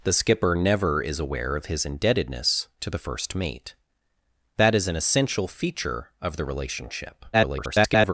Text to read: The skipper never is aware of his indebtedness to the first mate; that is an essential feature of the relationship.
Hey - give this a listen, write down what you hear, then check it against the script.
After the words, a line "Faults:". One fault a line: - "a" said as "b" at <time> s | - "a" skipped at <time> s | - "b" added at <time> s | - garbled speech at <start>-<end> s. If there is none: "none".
The skipper never is aware of his indebtedness to the first mate; that is an essential feature of the relationship. [garbled]
Faults:
- garbled speech at 7.3-8.1 s